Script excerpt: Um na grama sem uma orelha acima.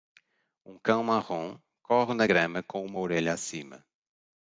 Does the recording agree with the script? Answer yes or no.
no